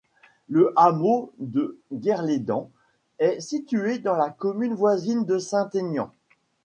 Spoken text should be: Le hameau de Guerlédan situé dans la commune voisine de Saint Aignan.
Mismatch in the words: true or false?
true